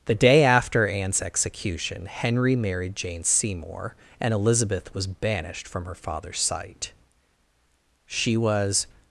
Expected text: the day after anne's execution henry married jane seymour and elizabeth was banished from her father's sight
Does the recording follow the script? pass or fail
fail